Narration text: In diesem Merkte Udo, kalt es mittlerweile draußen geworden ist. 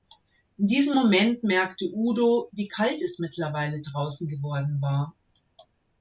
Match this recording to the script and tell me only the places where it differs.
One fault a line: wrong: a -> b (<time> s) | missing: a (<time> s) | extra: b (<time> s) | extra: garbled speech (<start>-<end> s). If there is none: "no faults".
extra: Moment (0.9 s)
extra: wie (2.5 s)
wrong: ist -> war (4.8 s)